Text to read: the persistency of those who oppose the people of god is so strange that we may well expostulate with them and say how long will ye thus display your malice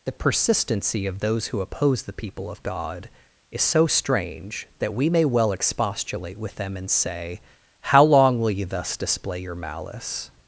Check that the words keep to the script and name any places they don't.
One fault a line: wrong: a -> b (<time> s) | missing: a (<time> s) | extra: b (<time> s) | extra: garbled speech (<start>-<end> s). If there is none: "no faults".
no faults